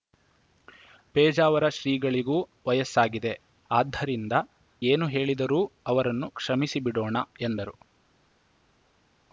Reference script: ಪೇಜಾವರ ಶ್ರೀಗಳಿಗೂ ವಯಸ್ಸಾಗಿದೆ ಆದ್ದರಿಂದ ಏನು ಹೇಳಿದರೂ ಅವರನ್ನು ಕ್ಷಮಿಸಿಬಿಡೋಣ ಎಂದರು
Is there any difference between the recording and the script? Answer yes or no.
no